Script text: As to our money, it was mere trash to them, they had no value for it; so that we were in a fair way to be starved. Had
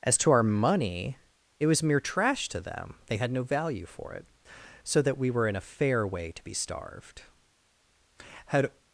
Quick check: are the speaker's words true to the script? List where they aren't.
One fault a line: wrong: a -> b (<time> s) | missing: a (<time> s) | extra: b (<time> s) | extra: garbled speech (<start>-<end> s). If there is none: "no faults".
no faults